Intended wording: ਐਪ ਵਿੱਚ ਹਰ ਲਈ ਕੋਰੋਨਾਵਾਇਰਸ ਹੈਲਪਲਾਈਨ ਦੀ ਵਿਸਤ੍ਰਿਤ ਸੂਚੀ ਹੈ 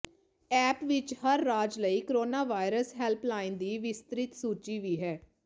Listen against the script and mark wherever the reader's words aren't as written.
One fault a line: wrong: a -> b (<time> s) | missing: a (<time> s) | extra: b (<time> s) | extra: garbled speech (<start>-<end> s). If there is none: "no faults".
extra: ਰਾਜ (1.4 s)
extra: ਵੀ (4.8 s)